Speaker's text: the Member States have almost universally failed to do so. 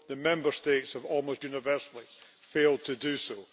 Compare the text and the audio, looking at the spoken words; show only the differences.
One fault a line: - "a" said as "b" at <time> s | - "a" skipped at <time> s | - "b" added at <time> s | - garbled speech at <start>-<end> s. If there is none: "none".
none